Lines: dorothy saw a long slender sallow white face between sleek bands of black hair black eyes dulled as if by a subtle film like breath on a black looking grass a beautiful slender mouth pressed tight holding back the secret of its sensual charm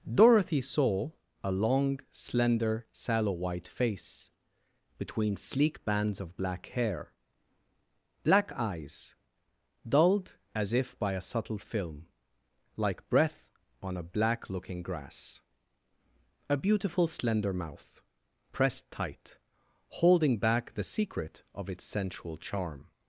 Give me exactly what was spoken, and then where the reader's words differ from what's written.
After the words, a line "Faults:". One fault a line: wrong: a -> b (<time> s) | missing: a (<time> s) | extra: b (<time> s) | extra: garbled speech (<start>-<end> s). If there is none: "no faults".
dorothy saw a long slender sallow white face between sleek bands of black hair black eyes dulled as if by a subtle film like breath on a black looking grass a beautiful slender mouth pressed tight holding back the secret of its sensual charm
Faults:
no faults